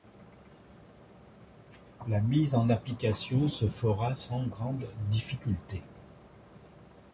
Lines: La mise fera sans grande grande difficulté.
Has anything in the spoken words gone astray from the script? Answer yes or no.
yes